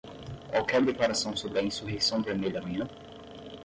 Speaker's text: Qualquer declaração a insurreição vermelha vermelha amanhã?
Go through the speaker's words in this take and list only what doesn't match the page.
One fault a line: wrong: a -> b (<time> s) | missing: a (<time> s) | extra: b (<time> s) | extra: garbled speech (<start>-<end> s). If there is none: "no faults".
extra: sobre (1.4 s)
missing: vermelha (2.6 s)